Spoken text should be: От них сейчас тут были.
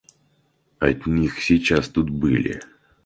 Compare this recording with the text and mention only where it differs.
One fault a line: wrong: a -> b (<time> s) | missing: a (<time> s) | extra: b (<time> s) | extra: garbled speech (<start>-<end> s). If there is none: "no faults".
no faults